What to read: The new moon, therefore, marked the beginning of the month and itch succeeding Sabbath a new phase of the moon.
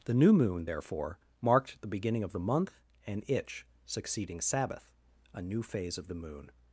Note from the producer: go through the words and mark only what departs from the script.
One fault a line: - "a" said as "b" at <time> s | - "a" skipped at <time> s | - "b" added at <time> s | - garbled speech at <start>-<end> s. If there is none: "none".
none